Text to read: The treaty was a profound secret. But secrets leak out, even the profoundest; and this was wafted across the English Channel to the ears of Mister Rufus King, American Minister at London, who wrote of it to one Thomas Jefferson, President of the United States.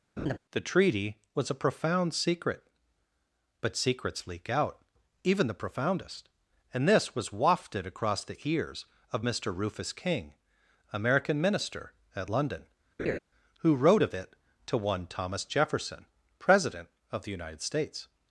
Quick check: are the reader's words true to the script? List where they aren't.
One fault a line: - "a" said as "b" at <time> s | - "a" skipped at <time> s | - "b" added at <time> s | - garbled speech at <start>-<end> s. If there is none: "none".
- "English Channel to the" skipped at 8.4 s